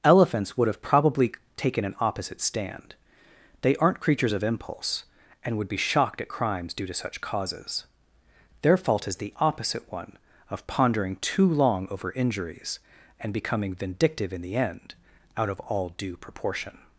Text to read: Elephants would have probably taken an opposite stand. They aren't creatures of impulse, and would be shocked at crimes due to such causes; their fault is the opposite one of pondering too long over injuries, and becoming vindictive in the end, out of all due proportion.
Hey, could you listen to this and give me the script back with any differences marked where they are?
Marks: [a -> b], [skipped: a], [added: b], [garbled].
Elephants would have probably taken an opposite stand. They aren't creatures of impulse, and would be shocked at crimes due to such causes; their fault is the opposite one of pondering too long over injuries, and becoming vindictive in the end, out of all due proportion.